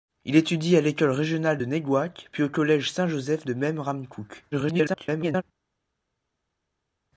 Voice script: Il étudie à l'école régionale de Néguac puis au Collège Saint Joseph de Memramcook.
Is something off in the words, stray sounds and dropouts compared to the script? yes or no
yes